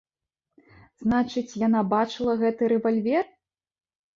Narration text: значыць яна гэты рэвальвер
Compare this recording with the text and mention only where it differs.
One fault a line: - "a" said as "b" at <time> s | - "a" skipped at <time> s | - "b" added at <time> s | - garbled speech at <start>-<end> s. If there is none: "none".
- "бачыла" added at 2.0 s